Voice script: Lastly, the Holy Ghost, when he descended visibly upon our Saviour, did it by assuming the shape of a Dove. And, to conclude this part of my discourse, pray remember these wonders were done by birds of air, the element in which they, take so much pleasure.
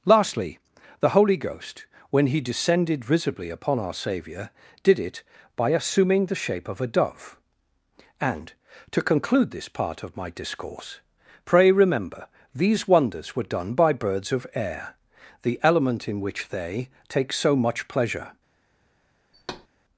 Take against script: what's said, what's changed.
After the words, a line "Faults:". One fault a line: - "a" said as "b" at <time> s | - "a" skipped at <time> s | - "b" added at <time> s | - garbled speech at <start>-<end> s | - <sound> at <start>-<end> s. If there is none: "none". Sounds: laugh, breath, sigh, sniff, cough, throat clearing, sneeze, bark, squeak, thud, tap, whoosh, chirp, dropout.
Lastly, the Holy Ghost, when he descended visibly upon our Saviour, did it by assuming the shape of a Dove. And, to conclude this part of my discourse, pray remember these wonders were done by birds of air, the element in which they, take so much pleasure.
Faults:
- thud at 19.3-19.7 s